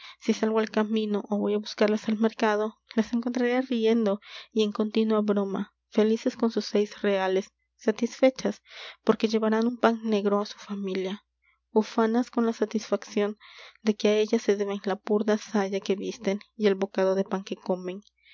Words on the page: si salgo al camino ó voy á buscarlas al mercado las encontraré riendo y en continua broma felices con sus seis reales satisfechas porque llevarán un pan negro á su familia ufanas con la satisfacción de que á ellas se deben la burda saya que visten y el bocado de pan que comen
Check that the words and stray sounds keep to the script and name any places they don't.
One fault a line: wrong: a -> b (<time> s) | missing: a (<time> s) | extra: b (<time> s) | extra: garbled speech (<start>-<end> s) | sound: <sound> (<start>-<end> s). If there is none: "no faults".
no faults